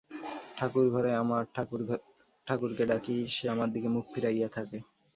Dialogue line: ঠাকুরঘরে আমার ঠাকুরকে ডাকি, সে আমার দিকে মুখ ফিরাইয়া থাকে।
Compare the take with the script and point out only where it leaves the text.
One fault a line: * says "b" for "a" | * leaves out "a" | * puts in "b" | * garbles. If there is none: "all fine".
all fine